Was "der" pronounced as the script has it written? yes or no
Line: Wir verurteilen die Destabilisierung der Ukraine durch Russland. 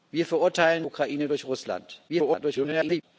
no